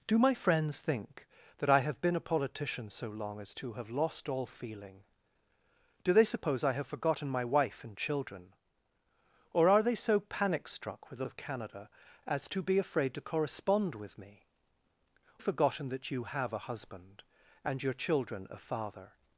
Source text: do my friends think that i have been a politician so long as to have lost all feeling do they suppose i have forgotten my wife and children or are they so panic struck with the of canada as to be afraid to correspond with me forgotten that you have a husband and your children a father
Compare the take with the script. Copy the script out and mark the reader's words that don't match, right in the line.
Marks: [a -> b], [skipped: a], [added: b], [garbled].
do my friends think that i have been a politician so long as to have lost all feeling do they suppose i have forgotten my wife and children or are they so panic struck with the of canada as to be afraid to correspond with me forgotten that you have a husband and your children a father